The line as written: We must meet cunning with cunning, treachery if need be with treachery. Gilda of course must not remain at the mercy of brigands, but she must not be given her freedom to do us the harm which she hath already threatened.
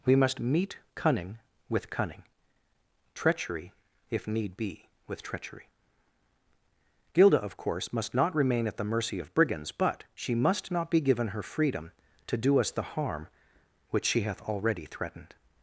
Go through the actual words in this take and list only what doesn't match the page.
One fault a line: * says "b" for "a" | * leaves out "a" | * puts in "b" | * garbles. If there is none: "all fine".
all fine